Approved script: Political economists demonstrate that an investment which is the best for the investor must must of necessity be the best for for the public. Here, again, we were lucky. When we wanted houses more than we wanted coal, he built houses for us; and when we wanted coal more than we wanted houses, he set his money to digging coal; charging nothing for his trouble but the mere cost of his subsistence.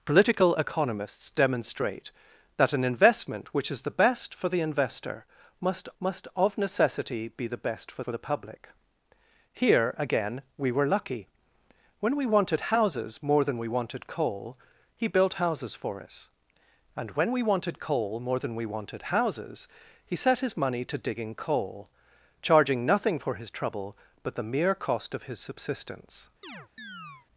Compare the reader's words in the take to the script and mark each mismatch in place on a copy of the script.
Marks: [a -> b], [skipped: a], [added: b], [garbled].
Political economists demonstrate that an investment which is the best for the investor must must of necessity be the best for for the public. Here, again, we were lucky. When we wanted houses more than we wanted coal, he built houses for us; and when we wanted coal more than we wanted houses, he set his money to digging coal; charging nothing for his trouble but the mere cost of his subsistence.